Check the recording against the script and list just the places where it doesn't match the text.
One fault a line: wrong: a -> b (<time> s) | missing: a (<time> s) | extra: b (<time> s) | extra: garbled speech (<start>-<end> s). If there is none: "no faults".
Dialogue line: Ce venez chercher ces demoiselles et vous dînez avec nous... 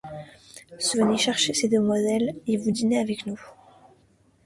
no faults